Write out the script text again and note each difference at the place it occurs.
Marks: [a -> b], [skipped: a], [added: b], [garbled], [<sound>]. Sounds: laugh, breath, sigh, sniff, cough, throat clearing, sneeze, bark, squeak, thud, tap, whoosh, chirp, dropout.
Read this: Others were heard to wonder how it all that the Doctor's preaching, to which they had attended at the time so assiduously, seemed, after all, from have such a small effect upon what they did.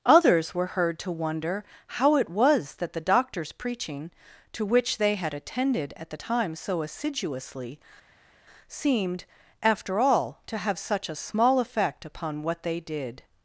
Others were heard to wonder how it [all -> was] that the Doctor's preaching, to which they had attended at the time so assiduously, seemed, after all, [from -> to] have such a small effect upon what they did.